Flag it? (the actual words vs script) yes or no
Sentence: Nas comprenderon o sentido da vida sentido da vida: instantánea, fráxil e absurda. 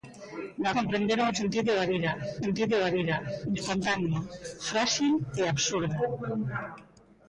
no